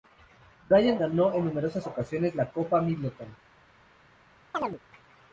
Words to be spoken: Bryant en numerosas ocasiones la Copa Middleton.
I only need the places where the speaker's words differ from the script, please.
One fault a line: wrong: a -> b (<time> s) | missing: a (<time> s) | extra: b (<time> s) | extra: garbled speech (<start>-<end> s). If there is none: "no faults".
extra: ganó (1.0 s)